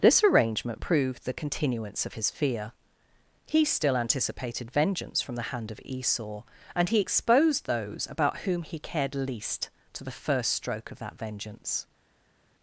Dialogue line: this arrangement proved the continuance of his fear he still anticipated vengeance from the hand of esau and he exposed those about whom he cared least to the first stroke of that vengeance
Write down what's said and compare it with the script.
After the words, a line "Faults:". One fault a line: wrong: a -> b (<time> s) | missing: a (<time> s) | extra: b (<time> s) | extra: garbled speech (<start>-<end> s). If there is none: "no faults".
this arrangement proved the continuance of his fear he still anticipated vengeance from the hand of esau and he exposed those about whom he cared least to the first stroke of that vengeance
Faults:
no faults